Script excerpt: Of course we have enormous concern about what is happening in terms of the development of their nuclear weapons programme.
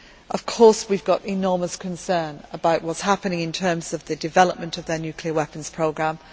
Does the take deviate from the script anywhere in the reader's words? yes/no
no